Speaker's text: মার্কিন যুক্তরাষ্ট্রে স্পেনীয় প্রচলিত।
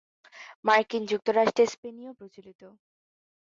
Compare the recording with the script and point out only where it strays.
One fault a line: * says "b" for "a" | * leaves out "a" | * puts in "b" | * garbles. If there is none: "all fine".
all fine